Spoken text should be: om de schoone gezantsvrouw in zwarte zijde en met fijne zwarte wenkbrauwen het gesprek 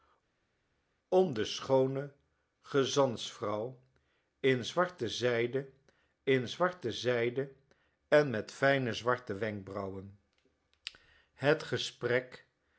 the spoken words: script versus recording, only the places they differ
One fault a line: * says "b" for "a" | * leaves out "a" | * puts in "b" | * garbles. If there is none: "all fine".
* puts in "in zwarte zijde"